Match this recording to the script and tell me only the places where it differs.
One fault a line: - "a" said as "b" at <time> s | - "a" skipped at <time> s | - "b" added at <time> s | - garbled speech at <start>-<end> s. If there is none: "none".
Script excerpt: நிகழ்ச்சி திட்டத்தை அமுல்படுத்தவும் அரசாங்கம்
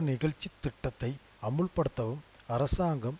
none